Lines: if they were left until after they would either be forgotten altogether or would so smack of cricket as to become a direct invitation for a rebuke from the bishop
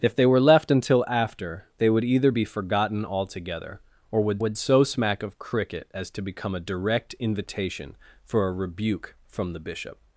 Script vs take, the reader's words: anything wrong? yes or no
yes